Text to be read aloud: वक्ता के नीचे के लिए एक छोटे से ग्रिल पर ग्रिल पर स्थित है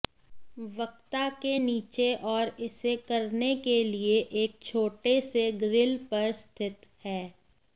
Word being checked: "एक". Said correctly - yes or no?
yes